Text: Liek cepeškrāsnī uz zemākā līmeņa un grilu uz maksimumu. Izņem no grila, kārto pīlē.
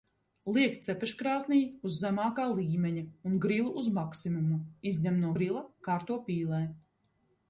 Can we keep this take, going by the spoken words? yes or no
yes